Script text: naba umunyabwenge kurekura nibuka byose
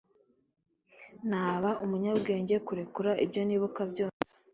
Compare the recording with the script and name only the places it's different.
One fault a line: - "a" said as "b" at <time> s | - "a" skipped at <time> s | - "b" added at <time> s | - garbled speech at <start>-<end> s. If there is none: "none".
- "ibyo" added at 3.2 s